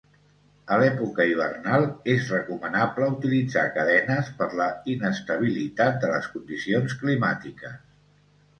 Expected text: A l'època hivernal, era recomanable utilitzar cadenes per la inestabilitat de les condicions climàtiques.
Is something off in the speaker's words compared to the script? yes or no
yes